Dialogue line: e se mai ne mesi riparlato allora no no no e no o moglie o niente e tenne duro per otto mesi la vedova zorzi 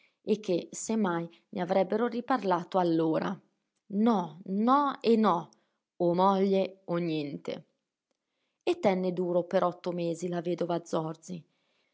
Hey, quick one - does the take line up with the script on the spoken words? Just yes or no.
no